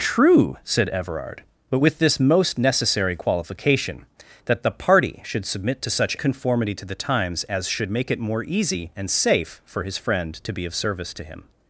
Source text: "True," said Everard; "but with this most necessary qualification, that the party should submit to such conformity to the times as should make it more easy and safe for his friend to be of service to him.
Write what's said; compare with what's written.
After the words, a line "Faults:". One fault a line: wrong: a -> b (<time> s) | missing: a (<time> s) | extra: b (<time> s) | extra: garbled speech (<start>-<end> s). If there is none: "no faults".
"True," said Everard; "but with this most necessary qualification, that the party should submit to such conformity to the times as should make it more easy and safe for his friend to be of service to him.
Faults:
no faults